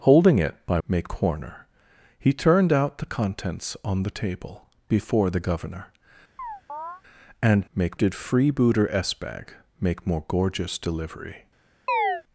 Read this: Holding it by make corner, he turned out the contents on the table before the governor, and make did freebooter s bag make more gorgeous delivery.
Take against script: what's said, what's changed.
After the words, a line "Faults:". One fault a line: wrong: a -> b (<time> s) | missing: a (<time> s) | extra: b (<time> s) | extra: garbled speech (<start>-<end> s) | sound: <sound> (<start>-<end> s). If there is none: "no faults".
Holding it by make corner, he turned out the contents on the table before the governor, and make did freebooter s bag make more gorgeous delivery.
Faults:
sound: chirp (6.4-7.0 s)
sound: chirp (11.9-12.2 s)